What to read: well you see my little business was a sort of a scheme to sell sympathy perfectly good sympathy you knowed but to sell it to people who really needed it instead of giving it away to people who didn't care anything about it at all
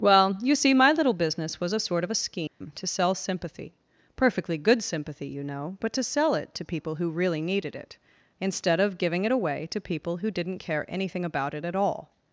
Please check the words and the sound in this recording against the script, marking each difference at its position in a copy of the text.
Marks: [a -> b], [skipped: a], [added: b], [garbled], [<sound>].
well you see my little business was a sort of a scheme [dropout] to sell sympathy perfectly good sympathy you [knowed -> know] but to sell it to people who really needed it instead of giving it away to people who didn't care anything about it at all